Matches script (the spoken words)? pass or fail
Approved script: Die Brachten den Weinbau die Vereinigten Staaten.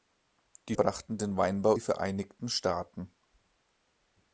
pass